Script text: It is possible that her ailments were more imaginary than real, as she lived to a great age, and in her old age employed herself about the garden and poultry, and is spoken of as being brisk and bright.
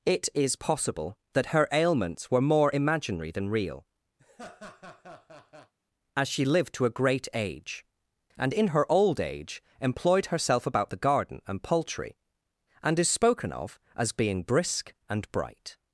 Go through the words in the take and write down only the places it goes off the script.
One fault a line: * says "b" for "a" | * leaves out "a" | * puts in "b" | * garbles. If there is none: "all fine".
all fine